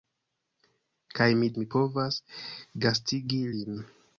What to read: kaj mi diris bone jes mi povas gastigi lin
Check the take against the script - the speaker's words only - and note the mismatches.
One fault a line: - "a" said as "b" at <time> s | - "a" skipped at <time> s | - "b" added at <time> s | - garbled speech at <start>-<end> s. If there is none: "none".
- "diris bone jes" skipped at 1.5 s